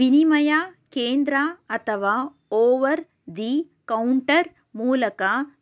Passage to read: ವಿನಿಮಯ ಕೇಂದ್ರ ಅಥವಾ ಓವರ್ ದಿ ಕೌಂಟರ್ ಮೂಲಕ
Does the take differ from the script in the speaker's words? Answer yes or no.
no